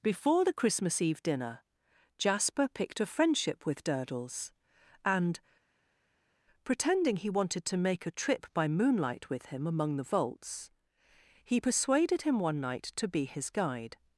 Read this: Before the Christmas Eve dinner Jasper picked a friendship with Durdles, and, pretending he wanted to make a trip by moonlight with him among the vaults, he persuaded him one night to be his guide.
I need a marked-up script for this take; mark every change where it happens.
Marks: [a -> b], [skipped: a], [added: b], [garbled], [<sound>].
Before the Christmas Eve dinner Jasper picked a friendship with Durdles, and, pretending he wanted to make a trip by moonlight with him among the vaults, he persuaded him one night to be his guide.